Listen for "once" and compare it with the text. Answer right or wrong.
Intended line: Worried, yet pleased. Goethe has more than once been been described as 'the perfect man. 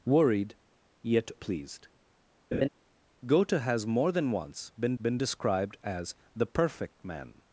right